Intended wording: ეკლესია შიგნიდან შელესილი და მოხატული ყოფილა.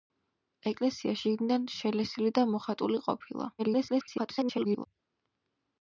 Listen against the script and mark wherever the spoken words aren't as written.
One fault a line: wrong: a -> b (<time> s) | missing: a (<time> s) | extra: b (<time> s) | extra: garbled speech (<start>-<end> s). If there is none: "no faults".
extra: garbled speech (3.6-4.9 s)